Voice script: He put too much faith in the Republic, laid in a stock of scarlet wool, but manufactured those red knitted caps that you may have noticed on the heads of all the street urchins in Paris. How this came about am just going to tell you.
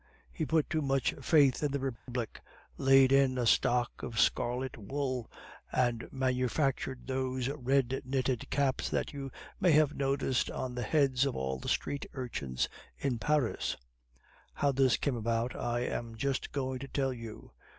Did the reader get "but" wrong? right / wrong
wrong